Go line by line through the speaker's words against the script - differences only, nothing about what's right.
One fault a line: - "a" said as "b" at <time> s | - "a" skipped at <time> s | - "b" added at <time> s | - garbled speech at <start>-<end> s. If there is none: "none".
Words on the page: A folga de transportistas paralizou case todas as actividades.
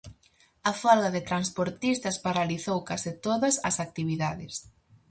none